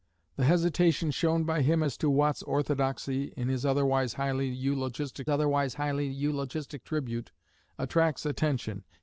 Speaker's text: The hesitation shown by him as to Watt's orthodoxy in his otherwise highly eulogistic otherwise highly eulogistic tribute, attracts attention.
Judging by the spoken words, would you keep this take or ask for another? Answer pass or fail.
pass